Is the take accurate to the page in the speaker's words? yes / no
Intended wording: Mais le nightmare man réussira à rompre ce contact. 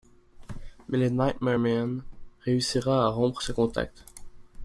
yes